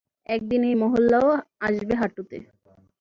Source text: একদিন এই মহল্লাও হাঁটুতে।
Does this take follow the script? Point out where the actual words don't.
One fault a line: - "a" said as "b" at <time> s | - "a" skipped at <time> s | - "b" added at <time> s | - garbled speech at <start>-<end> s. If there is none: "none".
- "আসবে" added at 1.6 s